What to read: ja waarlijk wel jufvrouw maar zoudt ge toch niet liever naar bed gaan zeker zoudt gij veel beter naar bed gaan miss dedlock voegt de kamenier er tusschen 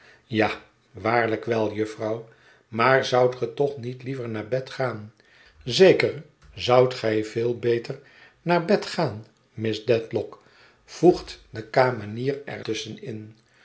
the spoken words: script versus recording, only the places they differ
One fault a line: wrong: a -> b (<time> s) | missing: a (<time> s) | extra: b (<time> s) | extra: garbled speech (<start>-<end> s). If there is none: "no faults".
no faults